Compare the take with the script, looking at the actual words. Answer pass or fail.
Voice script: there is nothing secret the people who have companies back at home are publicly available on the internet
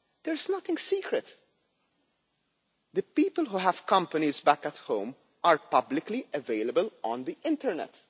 pass